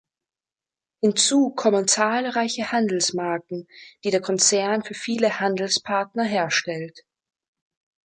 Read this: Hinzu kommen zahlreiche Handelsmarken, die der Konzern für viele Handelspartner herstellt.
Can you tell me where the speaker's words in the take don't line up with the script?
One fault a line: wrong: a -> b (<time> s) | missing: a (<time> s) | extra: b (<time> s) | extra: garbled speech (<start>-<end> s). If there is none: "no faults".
no faults